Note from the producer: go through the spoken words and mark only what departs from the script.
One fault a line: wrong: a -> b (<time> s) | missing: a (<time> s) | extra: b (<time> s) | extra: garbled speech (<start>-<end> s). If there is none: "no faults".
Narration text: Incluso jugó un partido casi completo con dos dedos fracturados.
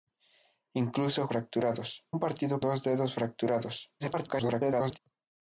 wrong: jugó -> fracturados (1.3 s)
missing: casi completo con (2.6 s)
extra: garbled speech (4.0-5.0 s)